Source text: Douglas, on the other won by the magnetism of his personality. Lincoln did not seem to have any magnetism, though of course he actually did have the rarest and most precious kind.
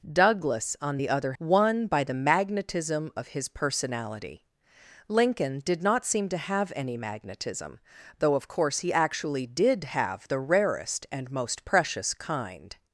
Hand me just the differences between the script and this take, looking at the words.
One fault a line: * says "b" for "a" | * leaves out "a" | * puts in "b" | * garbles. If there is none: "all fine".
all fine